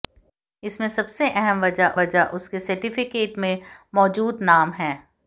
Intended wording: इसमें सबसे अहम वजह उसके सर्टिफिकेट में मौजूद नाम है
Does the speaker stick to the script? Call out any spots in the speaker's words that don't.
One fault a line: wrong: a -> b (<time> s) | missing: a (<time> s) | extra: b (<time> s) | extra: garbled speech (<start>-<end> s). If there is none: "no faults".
extra: वजह (2.0 s)